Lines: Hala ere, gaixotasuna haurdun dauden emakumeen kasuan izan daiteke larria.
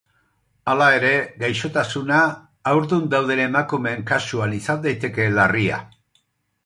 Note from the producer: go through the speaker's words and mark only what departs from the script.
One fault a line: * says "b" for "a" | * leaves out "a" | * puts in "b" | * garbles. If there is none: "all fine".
all fine